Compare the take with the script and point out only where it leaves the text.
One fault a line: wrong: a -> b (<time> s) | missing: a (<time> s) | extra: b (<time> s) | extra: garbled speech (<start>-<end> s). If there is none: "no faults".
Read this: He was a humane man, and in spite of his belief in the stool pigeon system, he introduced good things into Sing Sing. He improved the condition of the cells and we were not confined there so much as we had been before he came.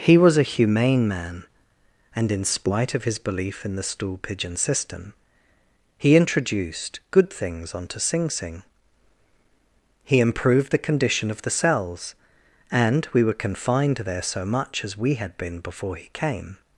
wrong: into -> onto (7.8 s)
missing: not (13.3 s)